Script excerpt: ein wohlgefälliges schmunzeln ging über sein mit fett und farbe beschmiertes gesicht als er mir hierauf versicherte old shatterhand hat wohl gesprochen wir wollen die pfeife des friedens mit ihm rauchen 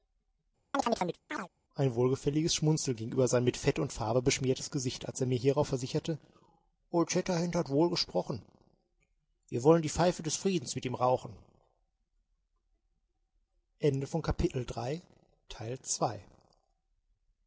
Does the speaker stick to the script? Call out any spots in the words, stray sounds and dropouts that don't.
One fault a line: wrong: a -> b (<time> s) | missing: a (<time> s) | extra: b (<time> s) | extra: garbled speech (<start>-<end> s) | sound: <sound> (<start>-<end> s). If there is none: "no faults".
sound: chirp (0.7-1.5 s)